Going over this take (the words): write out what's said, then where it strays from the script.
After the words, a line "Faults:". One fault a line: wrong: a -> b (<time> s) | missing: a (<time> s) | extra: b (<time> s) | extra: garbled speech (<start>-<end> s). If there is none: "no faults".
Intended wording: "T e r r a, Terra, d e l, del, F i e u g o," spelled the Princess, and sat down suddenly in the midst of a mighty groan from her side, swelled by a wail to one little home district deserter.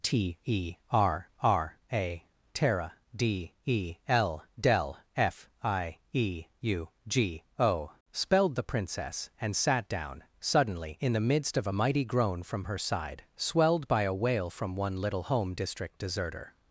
"T e r r a, Terra, d e l, del, F i e u g o," spelled the Princess, and sat down suddenly in the midst of a mighty groan from her side, swelled by a wail from one little home district deserter.
Faults:
wrong: to -> from (14.5 s)